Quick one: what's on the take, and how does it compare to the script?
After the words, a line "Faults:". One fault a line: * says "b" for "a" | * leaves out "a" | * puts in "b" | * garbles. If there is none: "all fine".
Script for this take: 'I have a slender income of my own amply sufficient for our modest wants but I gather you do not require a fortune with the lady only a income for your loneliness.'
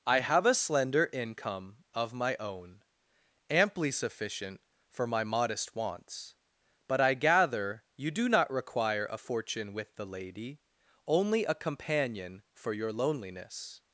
'I have a slender income of my own amply sufficient for my modest wants but I gather you do not require a fortune with the lady only a companion for your loneliness.'
Faults:
* says "my" for "our"
* says "companion" for "income"